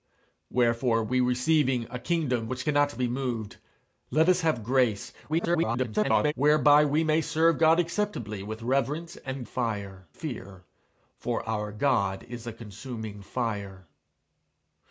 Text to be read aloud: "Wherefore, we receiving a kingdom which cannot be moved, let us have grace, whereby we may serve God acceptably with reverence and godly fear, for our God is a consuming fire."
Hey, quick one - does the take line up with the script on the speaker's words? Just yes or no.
no